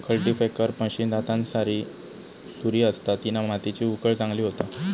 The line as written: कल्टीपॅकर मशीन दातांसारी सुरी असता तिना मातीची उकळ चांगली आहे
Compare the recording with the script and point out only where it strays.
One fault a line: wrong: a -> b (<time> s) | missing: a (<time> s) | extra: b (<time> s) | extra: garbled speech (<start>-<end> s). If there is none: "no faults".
wrong: आहे -> होता (4.4 s)